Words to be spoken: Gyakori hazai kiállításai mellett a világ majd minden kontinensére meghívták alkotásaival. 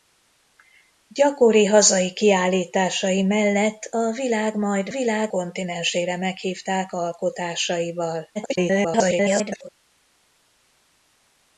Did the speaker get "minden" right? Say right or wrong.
wrong